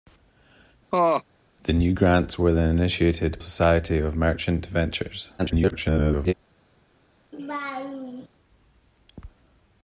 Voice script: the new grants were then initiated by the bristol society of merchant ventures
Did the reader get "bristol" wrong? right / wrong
wrong